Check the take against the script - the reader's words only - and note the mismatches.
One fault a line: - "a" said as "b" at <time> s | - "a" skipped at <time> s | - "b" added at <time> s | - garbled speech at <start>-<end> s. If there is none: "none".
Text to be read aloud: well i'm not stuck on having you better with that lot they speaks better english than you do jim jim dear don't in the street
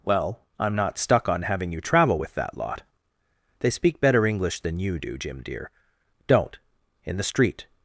- "better" said as "travel" at 1.8 s
- "speaks" said as "speak" at 3.7 s
- "jim" skipped at 5.4 s